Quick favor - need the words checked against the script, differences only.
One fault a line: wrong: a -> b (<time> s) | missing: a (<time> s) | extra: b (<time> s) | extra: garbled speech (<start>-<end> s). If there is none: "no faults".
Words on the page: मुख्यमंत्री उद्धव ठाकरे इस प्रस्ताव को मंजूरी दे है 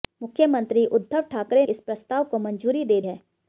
no faults